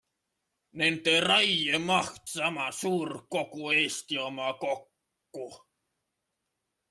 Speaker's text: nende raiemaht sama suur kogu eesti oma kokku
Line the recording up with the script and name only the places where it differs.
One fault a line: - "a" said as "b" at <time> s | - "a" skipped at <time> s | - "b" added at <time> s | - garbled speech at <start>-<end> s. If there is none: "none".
none